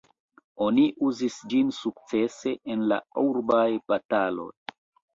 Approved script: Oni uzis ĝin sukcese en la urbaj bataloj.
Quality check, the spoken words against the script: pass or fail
pass